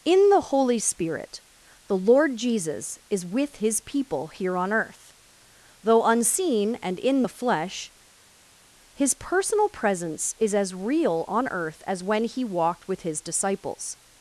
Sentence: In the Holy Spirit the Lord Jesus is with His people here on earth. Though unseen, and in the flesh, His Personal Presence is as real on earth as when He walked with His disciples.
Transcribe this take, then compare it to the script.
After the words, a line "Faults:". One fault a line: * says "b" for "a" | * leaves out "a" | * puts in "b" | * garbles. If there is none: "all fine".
In the Holy Spirit the Lord Jesus is with His people here on earth. Though unseen, and in the flesh, His Personal Presence is as real on earth as when He walked with His disciples.
Faults:
all fine